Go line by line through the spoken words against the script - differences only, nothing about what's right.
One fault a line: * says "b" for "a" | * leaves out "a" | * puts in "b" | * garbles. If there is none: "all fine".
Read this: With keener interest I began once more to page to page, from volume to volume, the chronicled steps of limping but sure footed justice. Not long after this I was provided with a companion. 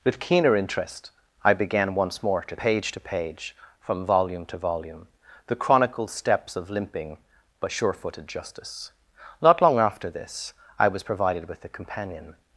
all fine